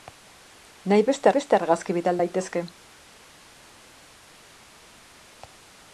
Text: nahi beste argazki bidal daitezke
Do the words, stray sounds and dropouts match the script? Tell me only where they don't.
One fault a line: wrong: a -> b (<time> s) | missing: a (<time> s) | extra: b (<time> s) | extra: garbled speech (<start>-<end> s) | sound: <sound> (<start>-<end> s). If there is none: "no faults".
extra: beste (1.4 s)